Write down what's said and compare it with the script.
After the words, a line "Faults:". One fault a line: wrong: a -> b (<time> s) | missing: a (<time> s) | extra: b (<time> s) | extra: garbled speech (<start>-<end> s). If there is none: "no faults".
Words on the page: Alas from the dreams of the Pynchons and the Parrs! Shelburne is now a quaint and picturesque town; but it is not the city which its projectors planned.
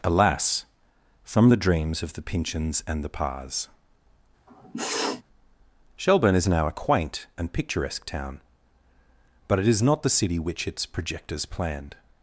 Alas from the dreams of the Pynchons and the Parrs! Shelburne is now a quaint and picturesque town; but it is not the city which its projectors planned.
Faults:
no faults